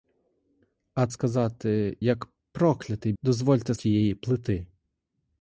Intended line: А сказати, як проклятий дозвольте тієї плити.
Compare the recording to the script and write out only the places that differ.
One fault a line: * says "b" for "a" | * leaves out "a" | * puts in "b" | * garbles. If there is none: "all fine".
all fine